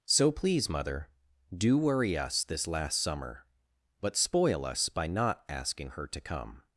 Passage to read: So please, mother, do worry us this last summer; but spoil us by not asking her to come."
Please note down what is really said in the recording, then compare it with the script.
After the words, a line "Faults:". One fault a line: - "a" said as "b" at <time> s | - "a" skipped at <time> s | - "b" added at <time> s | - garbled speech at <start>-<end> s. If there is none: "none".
So please, mother, do worry us this last summer; but spoil us by not asking her to come."
Faults:
none